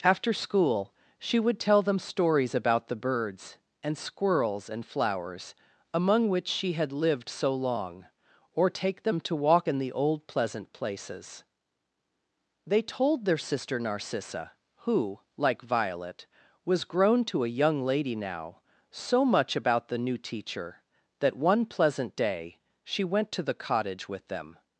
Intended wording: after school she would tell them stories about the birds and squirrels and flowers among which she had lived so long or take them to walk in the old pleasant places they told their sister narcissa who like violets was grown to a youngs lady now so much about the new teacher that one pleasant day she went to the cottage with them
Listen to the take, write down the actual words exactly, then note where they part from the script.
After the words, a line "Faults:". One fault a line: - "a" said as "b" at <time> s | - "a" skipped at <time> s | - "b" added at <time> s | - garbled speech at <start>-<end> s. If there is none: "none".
after school she would tell them stories about the birds and squirrels and flowers among which she had lived so long or take them to walk in the old pleasant places they told their sister narcissa who like violet was grown to a young lady now so much about the new teacher that one pleasant day she went to the cottage with them
Faults:
- "violets" said as "violet" at 15.6 s
- "youngs" said as "young" at 17.6 s